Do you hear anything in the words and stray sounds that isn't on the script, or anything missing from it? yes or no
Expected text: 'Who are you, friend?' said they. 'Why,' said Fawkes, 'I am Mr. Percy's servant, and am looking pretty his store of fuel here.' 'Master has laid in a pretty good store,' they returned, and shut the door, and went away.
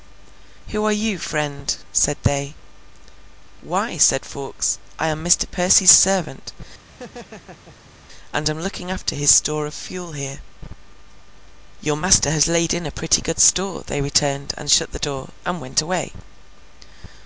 yes